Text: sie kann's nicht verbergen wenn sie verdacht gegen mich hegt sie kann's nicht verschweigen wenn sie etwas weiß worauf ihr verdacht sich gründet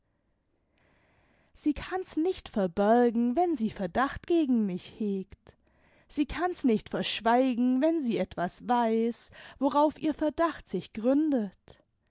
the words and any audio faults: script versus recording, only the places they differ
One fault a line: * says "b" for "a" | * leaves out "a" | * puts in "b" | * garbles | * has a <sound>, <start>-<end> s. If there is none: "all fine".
all fine